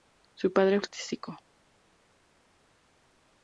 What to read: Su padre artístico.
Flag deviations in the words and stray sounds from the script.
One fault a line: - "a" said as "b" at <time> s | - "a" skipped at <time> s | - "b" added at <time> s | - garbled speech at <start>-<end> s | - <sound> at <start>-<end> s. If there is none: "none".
none